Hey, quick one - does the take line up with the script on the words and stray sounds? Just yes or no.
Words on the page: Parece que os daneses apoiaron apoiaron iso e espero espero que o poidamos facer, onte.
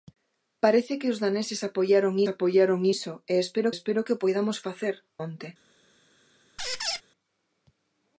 no